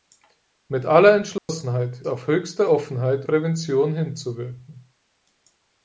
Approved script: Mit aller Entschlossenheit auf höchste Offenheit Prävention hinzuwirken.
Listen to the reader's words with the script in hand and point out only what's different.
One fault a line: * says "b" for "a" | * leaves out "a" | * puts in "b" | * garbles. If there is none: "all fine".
all fine